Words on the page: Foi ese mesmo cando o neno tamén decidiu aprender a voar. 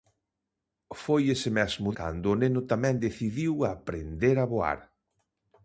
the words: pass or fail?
pass